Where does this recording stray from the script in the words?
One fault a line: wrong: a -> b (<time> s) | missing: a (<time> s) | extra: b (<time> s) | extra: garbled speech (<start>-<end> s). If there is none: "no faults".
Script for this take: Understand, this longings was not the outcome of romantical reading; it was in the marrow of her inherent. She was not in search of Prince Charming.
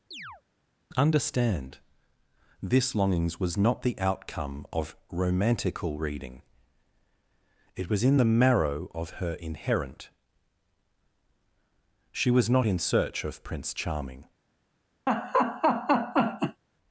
no faults